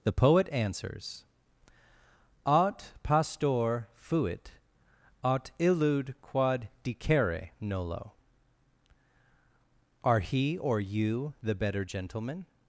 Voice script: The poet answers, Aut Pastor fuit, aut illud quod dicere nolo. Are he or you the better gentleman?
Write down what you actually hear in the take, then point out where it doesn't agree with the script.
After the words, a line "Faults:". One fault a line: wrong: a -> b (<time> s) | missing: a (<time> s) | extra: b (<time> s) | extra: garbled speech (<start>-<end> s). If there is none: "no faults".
The poet answers, Aut Pastor fuit, aut illud quod dicere nolo. Are he or you the better gentleman?
Faults:
no faults